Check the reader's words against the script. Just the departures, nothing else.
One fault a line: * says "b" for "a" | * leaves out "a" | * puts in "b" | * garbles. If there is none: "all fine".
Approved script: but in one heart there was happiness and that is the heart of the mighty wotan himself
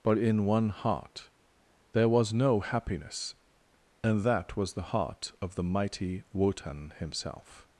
* puts in "no"
* says "was" for "is"